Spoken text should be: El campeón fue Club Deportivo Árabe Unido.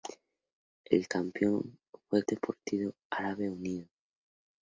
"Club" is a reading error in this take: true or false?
true